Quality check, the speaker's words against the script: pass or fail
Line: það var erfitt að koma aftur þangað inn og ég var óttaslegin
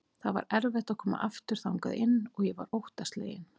pass